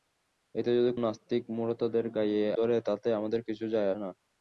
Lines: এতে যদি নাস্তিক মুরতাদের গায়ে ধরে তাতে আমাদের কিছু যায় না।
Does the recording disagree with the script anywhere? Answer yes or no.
no